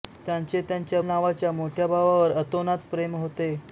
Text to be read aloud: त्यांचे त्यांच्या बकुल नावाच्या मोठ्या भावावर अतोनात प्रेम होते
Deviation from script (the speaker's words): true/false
true